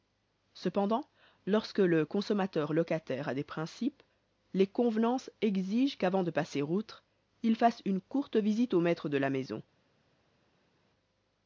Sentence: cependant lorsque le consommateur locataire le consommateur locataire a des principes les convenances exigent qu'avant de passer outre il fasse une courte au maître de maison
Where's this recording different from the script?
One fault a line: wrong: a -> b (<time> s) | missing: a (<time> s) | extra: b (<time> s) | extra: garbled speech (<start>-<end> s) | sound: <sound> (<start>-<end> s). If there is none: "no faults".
missing: le consommateur locataire (3.3 s)
extra: visite (8.4 s)
extra: la (9.2 s)